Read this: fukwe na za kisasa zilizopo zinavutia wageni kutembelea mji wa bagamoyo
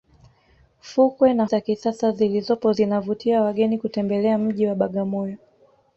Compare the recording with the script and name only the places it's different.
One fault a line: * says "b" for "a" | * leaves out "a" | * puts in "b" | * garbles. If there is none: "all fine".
all fine